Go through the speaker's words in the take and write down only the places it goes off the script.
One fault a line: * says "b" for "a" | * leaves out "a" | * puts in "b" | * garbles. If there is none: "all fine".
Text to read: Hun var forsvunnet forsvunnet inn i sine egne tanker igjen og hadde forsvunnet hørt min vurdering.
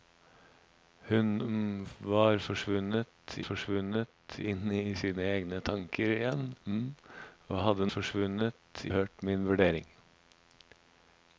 all fine